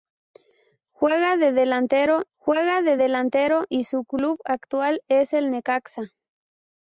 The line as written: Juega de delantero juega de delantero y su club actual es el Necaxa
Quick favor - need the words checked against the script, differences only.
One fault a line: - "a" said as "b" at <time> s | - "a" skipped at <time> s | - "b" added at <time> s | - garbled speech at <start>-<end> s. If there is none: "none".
none